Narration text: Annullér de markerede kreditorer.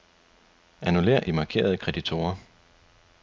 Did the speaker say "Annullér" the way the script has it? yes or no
yes